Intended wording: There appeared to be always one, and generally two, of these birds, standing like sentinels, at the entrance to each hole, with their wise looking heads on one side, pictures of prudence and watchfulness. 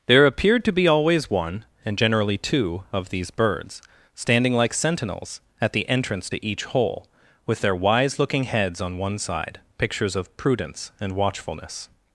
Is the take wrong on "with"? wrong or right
right